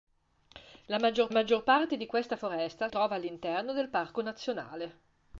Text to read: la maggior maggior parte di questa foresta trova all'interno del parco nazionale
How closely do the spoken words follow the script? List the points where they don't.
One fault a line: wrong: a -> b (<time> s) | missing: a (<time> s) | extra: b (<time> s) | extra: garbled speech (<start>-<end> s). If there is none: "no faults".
no faults